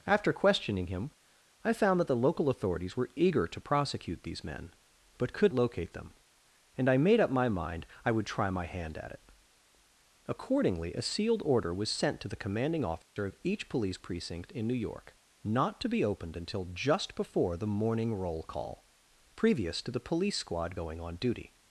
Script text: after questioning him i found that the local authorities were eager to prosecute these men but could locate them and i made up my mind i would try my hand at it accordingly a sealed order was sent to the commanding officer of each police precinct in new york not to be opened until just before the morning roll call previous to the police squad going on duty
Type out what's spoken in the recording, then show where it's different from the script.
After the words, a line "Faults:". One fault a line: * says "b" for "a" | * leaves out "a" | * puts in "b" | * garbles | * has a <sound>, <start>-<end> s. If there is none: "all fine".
after questioning him i found that the local authorities were eager to prosecute these men but could locate them and i made up my mind i would try my hand at it accordingly a sealed order was sent to the commanding officer of each police precinct in new york not to be opened until just before the morning roll call previous to the police squad going on duty
Faults:
* has a dropout, 13.0-13.2 s